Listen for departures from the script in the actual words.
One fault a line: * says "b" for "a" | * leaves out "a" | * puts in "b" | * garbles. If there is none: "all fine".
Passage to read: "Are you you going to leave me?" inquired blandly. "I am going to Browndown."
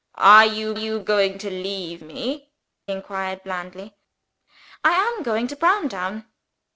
all fine